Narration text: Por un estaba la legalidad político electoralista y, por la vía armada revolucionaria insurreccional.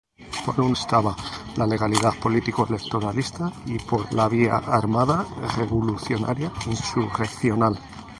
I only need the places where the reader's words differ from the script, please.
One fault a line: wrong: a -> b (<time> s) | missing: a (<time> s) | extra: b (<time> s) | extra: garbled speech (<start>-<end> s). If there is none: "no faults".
no faults